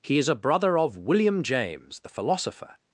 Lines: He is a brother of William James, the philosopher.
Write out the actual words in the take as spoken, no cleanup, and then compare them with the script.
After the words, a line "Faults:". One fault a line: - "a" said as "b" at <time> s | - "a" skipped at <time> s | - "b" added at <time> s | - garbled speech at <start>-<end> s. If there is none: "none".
He is a brother of William James, the philosopher.
Faults:
none